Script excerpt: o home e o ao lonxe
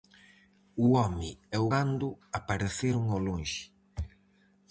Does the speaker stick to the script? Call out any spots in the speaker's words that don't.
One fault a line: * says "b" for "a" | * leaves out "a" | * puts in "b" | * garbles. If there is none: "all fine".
* puts in "gando apareceron"